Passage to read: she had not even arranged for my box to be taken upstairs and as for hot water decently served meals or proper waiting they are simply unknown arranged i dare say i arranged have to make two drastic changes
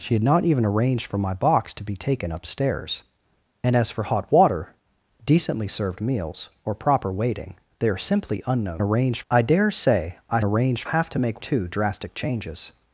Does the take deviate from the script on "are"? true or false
false